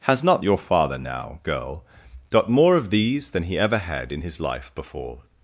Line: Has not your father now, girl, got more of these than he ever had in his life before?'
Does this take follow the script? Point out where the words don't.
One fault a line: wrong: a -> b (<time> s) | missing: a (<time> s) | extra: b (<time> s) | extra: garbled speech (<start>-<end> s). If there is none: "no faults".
no faults